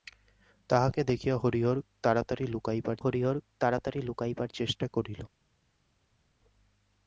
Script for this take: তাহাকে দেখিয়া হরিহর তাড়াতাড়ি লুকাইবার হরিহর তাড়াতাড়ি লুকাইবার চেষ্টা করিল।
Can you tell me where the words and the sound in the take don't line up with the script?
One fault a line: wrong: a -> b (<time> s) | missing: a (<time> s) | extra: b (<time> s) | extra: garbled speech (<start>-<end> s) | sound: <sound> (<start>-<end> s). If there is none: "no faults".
no faults